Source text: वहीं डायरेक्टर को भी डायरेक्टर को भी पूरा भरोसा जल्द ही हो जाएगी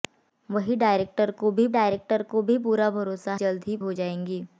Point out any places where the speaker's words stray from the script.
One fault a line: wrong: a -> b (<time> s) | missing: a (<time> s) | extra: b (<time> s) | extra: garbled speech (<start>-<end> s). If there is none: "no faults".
no faults